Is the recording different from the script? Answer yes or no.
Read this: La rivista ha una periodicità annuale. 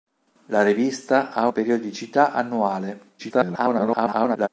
yes